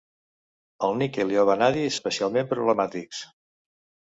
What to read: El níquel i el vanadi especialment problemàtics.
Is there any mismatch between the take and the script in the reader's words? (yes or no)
no